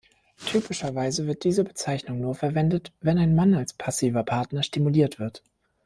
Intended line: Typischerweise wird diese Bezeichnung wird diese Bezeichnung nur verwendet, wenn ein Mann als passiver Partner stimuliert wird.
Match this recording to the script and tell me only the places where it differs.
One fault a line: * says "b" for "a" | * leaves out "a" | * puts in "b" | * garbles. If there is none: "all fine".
* leaves out "wird diese Bezeichnung"